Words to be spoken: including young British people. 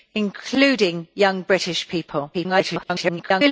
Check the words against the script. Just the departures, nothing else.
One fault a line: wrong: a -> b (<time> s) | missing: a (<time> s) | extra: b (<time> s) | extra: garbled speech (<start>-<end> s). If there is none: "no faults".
extra: garbled speech (2.3-3.5 s)